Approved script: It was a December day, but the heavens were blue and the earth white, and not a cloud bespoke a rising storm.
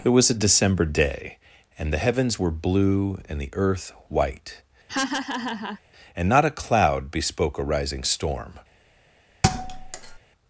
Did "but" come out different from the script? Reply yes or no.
yes